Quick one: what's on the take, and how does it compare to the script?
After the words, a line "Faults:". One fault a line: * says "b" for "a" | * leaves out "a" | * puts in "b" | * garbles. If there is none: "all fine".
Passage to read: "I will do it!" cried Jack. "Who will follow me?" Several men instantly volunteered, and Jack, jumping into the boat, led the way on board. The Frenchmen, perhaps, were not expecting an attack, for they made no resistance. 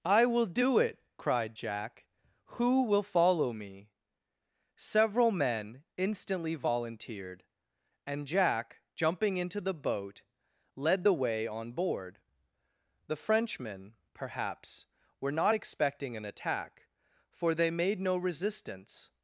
"I will do it!" cried Jack. "Who will follow me?" Several men instantly volunteered, and Jack, jumping into the boat, led the way on board. The Frenchmen, perhaps, were not expecting an attack, for they made no resistance.
Faults:
all fine